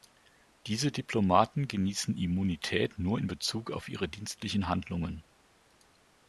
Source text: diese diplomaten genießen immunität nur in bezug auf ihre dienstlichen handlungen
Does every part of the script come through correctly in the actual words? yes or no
yes